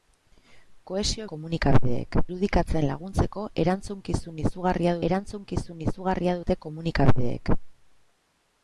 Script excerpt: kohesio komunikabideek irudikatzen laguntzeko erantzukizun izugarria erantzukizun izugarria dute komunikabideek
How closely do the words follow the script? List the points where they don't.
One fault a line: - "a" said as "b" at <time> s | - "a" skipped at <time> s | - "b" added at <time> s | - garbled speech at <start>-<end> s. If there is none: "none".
none